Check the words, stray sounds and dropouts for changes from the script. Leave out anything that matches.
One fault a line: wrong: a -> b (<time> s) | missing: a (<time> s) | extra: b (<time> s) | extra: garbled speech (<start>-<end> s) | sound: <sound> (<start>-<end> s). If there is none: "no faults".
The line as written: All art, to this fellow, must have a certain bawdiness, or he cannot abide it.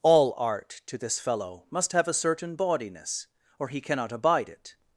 no faults